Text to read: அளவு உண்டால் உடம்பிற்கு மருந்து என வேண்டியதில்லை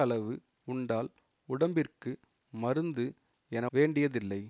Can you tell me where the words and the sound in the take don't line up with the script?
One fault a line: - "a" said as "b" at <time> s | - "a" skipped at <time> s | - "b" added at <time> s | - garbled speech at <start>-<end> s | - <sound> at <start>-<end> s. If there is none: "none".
none